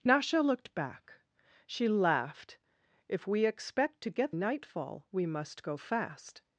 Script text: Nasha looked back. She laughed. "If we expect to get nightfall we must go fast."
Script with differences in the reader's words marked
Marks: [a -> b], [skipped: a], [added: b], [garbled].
Nasha looked back. She laughed. "If we expect to get nightfall we must go fast."